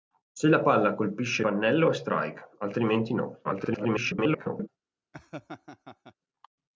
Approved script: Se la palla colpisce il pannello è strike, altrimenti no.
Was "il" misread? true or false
true